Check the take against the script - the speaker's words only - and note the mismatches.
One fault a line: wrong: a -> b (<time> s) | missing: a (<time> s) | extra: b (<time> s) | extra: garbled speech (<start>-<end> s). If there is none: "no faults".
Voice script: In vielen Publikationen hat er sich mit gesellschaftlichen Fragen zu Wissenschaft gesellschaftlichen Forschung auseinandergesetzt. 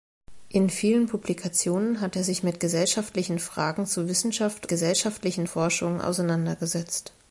no faults